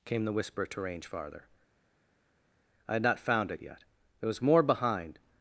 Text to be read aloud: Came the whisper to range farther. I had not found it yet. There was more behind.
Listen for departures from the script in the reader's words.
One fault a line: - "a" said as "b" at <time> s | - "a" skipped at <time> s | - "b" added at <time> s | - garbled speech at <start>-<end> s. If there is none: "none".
none